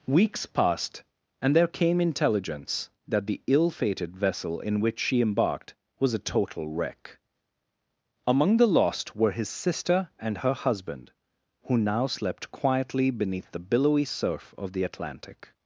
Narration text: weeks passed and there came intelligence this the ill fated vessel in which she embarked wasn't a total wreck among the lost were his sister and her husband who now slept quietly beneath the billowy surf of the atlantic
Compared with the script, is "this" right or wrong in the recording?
wrong